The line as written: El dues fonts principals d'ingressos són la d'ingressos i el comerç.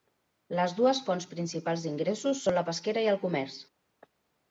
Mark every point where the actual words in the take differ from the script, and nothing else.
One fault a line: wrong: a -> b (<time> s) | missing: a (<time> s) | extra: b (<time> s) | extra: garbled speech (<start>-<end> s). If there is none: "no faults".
wrong: El -> Les (0.6 s)
wrong: d'ingressos -> pesquera (2.7 s)